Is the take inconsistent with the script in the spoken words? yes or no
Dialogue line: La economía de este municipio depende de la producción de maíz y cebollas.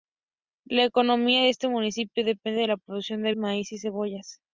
no